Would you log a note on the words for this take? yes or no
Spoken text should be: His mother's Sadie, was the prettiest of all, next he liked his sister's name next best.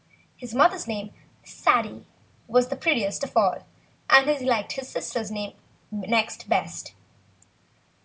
yes